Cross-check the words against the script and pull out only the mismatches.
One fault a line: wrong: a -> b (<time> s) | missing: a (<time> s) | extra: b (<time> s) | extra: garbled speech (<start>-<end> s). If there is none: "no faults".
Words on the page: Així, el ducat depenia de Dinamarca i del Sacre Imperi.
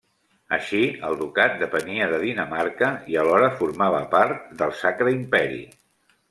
extra: alhora formava part (3.3 s)